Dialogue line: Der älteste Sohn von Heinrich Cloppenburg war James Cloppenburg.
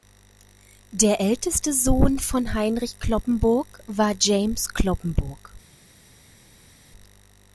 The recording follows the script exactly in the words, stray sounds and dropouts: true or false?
true